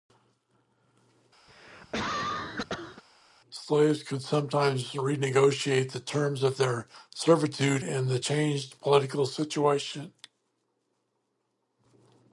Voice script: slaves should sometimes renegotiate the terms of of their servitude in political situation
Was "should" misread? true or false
true